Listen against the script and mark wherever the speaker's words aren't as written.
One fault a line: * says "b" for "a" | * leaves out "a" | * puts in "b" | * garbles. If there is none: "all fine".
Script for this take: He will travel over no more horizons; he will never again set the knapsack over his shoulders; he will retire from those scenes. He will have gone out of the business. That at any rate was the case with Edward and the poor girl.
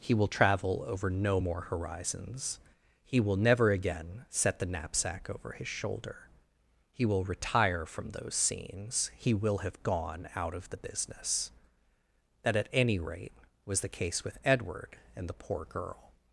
* says "shoulder" for "shoulders"